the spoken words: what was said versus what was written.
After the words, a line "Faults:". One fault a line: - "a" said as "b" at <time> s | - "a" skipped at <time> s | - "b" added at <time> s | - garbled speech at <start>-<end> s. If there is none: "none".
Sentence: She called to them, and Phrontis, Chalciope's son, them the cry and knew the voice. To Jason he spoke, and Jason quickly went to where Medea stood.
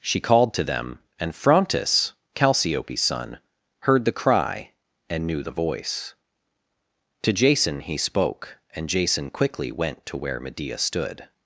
She called to them, and Phrontis, Chalciope's son, heard the cry and knew the voice. To Jason he spoke, and Jason quickly went to where Medea stood.
Faults:
- "them" said as "heard" at 3.8 s